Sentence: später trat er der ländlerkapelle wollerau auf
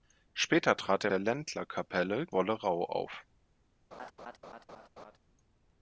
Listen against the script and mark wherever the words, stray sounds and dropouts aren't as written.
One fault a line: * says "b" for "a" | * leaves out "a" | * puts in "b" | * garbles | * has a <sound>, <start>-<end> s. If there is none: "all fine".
* has a laugh, 3.9-5.2 s